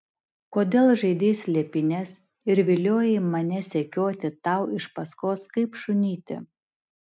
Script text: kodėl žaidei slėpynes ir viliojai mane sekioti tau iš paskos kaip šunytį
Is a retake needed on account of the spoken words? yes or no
no